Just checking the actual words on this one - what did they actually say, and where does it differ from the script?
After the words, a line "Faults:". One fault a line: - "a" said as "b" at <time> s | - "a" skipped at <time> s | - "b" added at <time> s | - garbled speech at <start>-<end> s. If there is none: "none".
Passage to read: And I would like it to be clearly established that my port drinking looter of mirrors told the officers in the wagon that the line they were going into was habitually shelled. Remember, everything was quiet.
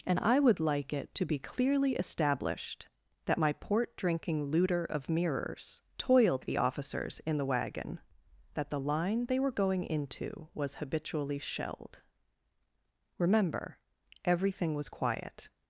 And I would like it to be clearly established that my port drinking looter of mirrors toiled the officers in the wagon that the line they were going into was habitually shelled. Remember, everything was quiet.
Faults:
- "told" said as "toiled" at 6.0 s